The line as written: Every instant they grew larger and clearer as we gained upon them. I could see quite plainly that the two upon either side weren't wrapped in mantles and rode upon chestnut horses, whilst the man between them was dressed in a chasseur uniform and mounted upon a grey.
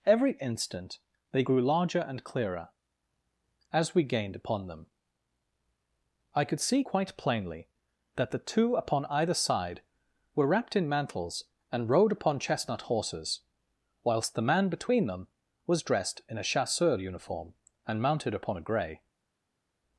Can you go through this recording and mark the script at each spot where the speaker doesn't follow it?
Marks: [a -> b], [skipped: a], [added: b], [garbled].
Every instant they grew larger and clearer as we gained upon them. I could see quite plainly that the two upon either side [weren't -> were] wrapped in mantles and rode upon chestnut horses, whilst the man between them was dressed in a chasseur uniform and mounted upon a grey.